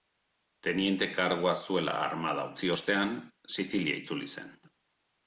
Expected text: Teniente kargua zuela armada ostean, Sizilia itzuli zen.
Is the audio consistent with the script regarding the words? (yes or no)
no